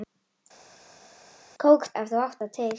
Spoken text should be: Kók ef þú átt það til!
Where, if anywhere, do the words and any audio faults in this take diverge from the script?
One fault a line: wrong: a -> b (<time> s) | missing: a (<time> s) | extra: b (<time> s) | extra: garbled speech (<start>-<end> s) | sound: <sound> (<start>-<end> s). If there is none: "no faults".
no faults